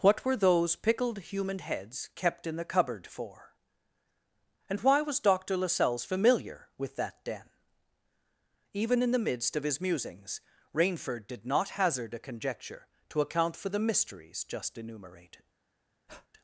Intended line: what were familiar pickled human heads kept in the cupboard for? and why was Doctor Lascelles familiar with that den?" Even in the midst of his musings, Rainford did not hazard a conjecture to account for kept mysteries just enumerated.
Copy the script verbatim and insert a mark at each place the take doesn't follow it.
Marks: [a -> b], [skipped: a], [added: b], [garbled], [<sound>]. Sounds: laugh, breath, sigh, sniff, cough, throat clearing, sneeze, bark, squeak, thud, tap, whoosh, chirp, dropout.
what were [familiar -> those] pickled human heads kept in the cupboard for? and why was Doctor Lascelles familiar with that den?" Even in the midst of his musings, Rainford did not hazard a conjecture to account for [kept -> the] mysteries just enumerated. [breath]